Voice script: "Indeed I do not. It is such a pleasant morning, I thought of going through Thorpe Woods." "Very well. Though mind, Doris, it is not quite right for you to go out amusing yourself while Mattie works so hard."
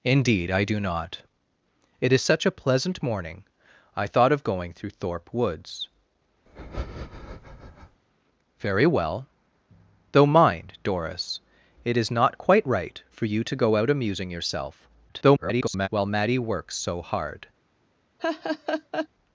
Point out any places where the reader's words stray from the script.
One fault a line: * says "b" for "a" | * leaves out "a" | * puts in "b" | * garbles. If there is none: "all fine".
* garbles